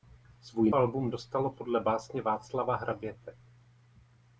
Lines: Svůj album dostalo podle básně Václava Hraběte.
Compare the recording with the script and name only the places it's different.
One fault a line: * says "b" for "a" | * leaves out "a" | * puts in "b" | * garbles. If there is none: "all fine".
all fine